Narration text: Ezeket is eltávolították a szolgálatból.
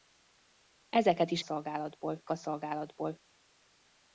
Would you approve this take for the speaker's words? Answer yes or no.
no